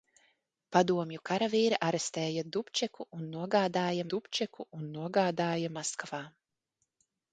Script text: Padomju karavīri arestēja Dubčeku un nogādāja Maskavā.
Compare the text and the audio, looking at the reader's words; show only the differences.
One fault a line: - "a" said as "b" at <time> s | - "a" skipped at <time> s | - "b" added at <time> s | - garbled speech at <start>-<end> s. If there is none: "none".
- "Dubčeku un nogādāja" added at 4.1 s